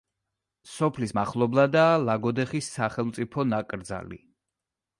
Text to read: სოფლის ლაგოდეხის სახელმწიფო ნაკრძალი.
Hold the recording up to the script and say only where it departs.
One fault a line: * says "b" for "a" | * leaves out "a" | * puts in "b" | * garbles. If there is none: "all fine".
* puts in "მახლობლადაა"